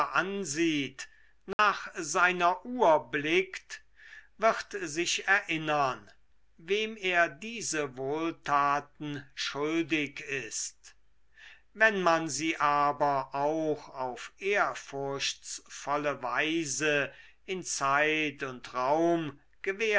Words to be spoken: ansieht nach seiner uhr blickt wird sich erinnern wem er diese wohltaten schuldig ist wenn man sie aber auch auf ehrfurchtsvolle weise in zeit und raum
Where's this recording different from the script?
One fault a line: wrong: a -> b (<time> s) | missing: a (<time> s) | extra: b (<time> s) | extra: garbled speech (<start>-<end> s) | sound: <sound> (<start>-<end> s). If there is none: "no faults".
sound: dropout (1.5-1.6 s)